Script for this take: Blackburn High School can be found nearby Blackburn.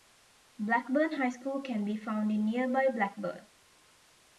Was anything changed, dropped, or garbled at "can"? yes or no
no